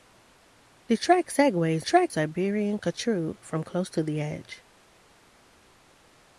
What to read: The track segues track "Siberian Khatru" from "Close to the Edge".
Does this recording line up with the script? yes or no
yes